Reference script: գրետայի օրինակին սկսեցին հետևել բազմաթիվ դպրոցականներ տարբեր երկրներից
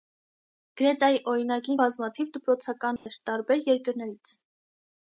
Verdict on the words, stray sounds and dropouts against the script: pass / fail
fail